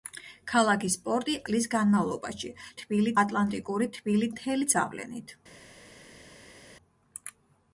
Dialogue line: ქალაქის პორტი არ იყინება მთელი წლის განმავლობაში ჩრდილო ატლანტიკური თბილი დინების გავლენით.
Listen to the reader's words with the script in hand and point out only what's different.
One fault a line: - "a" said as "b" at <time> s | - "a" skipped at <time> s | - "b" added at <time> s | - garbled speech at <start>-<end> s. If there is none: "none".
- "არ იყინება მთელი" skipped at 1.4 s
- "ჩრდილო" said as "თბილი" at 2.8 s
- "დინების" said as "მთელი" at 4.3 s